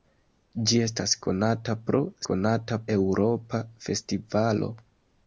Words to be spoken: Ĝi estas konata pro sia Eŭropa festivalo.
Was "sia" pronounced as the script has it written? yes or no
no